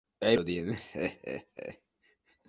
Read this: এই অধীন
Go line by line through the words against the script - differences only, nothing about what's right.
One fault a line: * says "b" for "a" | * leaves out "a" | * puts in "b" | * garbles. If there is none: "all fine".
all fine